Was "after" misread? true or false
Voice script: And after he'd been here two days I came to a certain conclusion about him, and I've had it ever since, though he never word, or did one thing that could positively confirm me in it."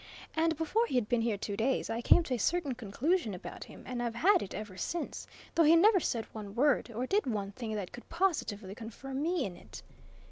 true